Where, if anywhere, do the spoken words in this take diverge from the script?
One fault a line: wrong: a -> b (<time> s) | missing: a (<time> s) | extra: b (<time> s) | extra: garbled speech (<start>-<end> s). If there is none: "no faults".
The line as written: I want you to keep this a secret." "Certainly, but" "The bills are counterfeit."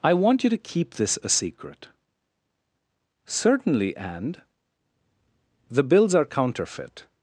wrong: but -> and (4.0 s)